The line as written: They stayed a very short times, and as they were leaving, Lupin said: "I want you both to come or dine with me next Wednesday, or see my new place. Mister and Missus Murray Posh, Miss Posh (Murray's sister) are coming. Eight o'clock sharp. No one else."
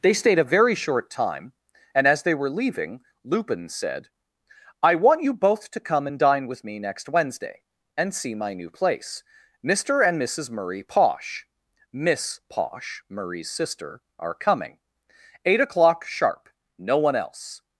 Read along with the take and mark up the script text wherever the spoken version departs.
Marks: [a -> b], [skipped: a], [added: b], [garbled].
They stayed a very short [times, -> time] and as they were leaving, Lupin said: "I want you both to come [or -> and] dine with me next Wednesday, [or -> and] see my new place. Mister and Missus Murray Posh, Miss Posh (Murray's sister) are coming. Eight o'clock sharp. No one else."